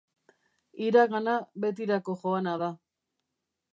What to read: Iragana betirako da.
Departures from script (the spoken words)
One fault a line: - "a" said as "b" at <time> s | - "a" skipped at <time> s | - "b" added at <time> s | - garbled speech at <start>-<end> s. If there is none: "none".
- "joana" added at 2.2 s